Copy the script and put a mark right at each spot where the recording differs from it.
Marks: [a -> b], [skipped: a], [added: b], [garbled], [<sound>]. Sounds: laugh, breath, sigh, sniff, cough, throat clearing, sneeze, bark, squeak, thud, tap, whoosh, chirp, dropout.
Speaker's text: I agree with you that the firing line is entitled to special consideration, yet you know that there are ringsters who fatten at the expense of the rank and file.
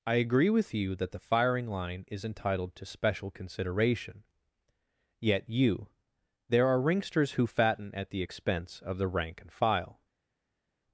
I agree with you that the firing line is entitled to special consideration, yet you [skipped: know that] there are ringsters who fatten at the expense of the rank and file.